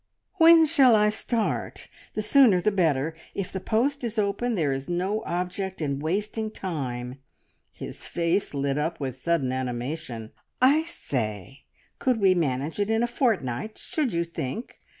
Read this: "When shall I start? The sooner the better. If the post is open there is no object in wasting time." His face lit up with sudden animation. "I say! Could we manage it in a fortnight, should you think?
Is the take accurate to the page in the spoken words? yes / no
yes